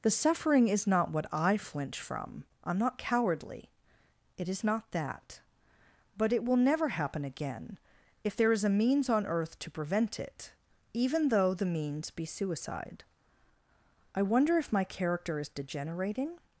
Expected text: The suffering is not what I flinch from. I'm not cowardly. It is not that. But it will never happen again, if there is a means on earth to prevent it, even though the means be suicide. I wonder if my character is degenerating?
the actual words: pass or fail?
pass